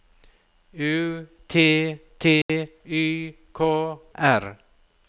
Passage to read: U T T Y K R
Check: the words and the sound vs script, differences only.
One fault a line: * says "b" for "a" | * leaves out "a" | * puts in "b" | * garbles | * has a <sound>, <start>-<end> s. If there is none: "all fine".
* has a dropout, 2.4-2.5 s